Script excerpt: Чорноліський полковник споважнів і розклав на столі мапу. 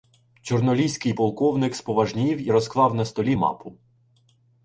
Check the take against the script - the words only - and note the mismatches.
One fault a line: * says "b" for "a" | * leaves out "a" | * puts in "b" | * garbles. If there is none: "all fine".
all fine